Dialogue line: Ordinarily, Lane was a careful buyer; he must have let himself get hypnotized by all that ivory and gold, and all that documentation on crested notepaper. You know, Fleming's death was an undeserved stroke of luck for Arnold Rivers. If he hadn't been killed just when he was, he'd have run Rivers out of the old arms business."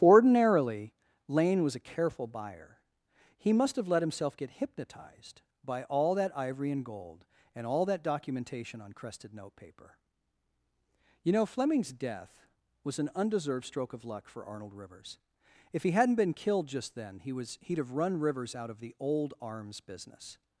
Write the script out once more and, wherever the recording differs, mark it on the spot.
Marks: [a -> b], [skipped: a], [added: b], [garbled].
Ordinarily, Lane was a careful buyer; he must have let himself get hypnotized by all that ivory and gold, and all that documentation on crested notepaper. You know, Fleming's death was an undeserved stroke of luck for Arnold Rivers. If he hadn't been killed just [when -> then] he was, he'd have run Rivers out of the old arms business."